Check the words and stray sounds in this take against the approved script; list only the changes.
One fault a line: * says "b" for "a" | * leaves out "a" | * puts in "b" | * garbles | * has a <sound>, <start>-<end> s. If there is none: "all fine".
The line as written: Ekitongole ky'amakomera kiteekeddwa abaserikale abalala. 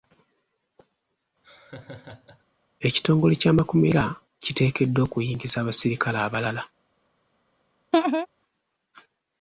* has a laugh, 1.4-2.4 s
* puts in "okuyingiza"
* has a laugh, 7.9-8.3 s